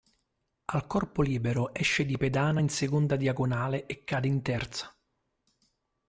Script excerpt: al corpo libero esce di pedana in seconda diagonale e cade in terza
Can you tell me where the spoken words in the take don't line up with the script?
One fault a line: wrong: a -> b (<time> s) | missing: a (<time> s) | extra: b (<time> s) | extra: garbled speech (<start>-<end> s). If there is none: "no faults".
no faults